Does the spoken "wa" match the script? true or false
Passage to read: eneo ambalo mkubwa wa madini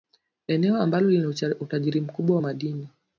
true